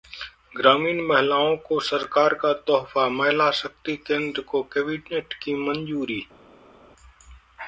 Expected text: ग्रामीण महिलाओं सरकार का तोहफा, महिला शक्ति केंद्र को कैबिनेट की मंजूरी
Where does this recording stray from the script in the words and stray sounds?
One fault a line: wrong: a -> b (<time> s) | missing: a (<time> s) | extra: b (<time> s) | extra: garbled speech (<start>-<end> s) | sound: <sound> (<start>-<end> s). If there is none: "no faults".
extra: को (1.6 s)